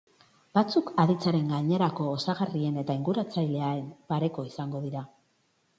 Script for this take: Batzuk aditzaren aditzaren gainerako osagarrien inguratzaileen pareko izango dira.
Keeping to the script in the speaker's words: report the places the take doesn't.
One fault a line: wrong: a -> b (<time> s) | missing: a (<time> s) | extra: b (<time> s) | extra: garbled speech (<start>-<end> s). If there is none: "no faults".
missing: aditzaren (1.5 s)
extra: eta (2.9 s)